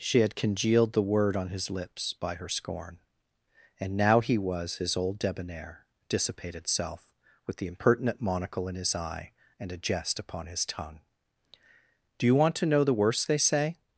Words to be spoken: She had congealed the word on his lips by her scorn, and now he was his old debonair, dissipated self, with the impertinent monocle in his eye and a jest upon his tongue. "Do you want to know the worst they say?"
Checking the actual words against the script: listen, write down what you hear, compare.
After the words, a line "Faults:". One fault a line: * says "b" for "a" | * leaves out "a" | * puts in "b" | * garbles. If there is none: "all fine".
She had congealed the word on his lips by her scorn, and now he was his old debonair, dissipated self, with the impertinent monocle in his eye and a jest upon his tongue. "Do you want to know the worst they say?"
Faults:
all fine